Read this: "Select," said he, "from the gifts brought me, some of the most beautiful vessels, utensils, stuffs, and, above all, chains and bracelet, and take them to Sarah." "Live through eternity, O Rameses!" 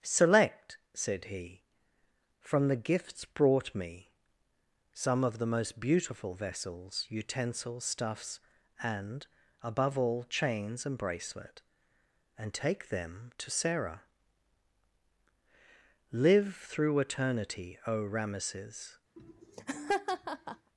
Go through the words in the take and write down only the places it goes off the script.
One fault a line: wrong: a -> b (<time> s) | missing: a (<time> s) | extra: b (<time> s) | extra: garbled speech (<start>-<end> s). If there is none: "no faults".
no faults